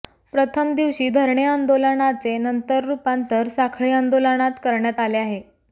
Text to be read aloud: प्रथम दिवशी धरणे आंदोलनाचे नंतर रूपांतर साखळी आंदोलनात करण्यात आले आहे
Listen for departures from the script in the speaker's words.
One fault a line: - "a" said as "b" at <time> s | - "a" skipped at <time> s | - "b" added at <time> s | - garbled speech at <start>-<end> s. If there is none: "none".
none